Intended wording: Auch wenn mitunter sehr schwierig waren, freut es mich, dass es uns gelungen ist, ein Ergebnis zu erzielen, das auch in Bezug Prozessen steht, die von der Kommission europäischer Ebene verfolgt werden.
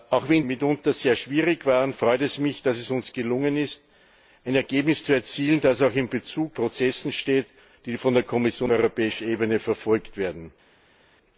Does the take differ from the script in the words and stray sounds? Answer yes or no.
no